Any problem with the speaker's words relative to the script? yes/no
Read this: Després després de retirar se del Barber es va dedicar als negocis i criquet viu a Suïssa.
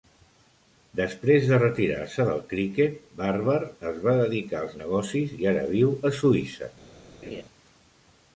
yes